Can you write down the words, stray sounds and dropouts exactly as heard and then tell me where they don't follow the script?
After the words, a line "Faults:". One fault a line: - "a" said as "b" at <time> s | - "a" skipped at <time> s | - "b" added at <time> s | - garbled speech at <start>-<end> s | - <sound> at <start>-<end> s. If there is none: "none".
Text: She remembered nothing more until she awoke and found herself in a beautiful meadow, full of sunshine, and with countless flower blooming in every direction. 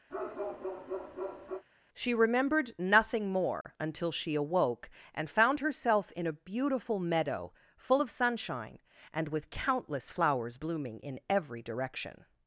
She remembered nothing more until she awoke and found herself in a beautiful meadow, full of sunshine, and with countless flowers blooming in every direction.
Faults:
- bark at 0.1-1.6 s
- dropout at 3.6-3.6 s
- "flower" said as "flowers" at 10.1 s